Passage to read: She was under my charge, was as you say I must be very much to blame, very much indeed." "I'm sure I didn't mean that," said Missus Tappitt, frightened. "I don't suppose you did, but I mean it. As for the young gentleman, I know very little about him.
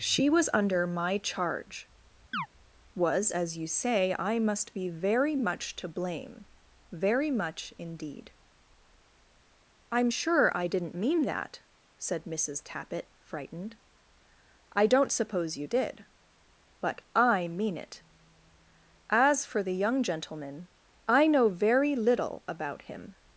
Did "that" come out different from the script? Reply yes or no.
no